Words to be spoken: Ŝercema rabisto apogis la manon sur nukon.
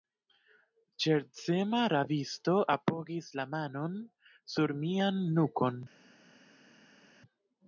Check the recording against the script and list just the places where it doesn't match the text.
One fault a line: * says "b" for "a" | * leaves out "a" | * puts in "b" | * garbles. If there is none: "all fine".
* puts in "mian"